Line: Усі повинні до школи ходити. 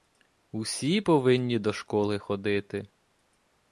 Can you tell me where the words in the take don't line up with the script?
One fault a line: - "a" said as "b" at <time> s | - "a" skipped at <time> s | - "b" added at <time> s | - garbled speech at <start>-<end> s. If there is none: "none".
none